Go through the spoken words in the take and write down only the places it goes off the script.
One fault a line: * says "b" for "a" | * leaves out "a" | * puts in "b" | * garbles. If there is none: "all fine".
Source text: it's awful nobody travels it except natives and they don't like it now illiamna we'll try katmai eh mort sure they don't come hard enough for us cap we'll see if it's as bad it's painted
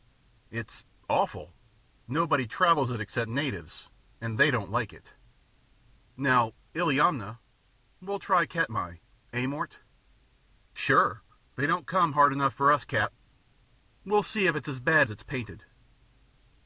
all fine